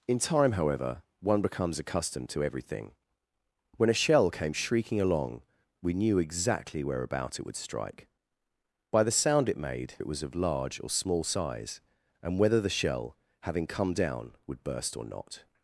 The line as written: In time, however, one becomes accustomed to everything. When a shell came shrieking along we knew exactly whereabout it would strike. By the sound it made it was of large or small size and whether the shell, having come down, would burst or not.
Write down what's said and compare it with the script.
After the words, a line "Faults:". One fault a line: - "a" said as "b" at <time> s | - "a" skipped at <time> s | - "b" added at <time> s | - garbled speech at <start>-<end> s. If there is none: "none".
In time, however, one becomes accustomed to everything. When a shell came shrieking along we knew exactly whereabout it would strike. By the sound it made it was of large or small size and whether the shell, having come down, would burst or not.
Faults:
none